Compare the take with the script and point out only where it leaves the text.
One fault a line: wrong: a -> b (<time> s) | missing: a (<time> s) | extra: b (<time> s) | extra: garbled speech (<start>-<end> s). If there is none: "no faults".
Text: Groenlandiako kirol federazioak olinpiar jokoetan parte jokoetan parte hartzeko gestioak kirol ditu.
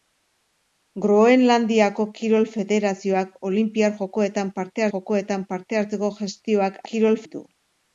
no faults